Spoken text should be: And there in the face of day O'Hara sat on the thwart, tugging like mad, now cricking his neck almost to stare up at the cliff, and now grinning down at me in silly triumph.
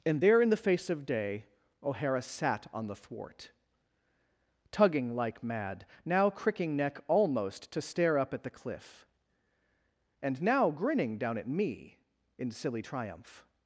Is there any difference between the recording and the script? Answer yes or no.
yes